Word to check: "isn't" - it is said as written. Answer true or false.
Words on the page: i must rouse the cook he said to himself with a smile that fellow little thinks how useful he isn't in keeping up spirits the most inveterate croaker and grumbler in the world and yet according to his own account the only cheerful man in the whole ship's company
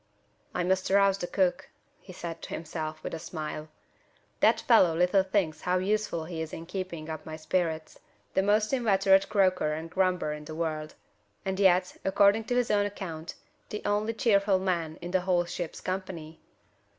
false